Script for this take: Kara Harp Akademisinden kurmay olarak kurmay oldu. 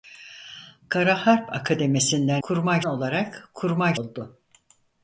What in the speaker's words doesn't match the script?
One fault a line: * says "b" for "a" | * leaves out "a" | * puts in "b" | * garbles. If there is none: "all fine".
all fine